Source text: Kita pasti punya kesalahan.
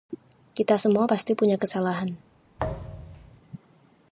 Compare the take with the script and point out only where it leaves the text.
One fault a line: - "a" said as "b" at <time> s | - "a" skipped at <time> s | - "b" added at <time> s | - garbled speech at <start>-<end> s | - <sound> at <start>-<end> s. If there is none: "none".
- "semua" added at 0.8 s
- thud at 2.6-3.4 s